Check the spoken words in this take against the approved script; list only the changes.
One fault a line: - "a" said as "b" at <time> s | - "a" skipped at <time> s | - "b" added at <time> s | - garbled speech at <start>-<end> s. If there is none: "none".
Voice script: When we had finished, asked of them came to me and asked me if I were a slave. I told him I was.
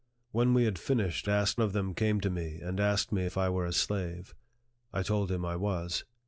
none